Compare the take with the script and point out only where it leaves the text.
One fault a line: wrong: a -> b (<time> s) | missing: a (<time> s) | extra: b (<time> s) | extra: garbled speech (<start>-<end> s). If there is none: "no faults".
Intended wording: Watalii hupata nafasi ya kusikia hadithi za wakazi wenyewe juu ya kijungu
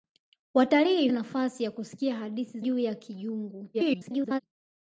missing: hupata (1.1 s)
missing: za wakazi wenyewe (2.6 s)
extra: garbled speech (3.7-4.4 s)